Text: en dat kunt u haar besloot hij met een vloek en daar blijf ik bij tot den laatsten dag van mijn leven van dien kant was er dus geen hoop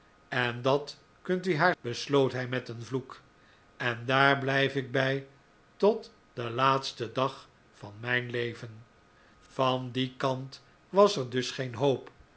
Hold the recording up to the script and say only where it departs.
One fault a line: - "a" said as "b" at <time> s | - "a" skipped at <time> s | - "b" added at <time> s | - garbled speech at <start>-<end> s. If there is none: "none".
none